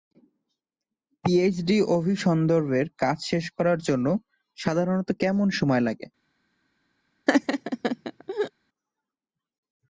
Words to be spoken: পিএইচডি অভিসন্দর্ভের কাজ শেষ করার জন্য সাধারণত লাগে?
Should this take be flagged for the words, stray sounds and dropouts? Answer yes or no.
yes